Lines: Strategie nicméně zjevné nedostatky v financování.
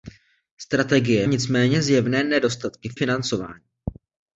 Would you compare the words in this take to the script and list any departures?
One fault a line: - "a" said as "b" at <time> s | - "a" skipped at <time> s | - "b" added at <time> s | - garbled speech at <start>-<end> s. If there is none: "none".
none